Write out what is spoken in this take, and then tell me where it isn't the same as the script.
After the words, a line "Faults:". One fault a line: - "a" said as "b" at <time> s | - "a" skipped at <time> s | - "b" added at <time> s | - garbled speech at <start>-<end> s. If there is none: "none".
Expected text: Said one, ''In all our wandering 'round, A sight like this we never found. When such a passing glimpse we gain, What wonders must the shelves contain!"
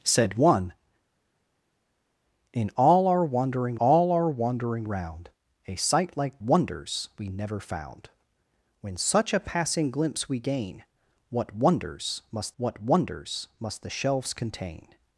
Said one, ''In all our wandering all our wandering 'round, A sight like wonders we never found. When such a passing glimpse we gain, What wonders must What wonders must the shelves contain!"
Faults:
- "all our wandering" added at 3.8 s
- "this" said as "wonders" at 6.4 s
- "What wonders must" added at 12.6 s